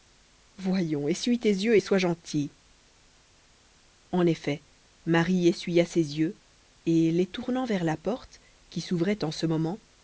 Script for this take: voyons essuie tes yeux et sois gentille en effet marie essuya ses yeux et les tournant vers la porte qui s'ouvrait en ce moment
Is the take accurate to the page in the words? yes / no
yes